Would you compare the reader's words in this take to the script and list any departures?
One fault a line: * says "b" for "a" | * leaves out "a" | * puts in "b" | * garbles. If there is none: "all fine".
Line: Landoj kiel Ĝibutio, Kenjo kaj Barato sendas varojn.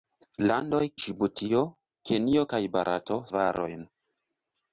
* leaves out "kiel"
* leaves out "sendas"